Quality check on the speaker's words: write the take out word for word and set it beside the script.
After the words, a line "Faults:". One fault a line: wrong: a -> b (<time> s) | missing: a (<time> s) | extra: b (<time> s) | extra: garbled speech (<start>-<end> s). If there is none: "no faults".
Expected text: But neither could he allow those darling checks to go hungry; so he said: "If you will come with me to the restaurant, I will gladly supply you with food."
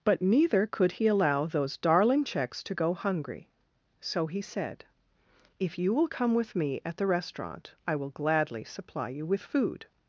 But neither could he allow those darling checks to go hungry; so he said: "If you will come with me at the restaurant, I will gladly supply you with food."
Faults:
wrong: to -> at (6.9 s)